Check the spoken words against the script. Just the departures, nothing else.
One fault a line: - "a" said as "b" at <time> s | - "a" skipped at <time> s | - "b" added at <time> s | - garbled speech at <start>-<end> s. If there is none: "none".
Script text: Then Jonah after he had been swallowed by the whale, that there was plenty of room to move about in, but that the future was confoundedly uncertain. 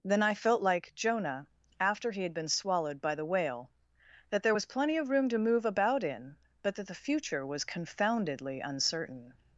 - "I felt like" added at 0.2 s